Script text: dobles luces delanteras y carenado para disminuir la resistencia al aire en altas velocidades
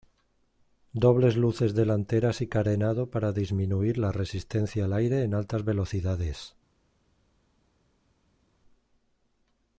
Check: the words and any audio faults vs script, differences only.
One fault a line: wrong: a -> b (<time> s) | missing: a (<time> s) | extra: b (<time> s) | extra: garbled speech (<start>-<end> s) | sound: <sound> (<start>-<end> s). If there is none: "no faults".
no faults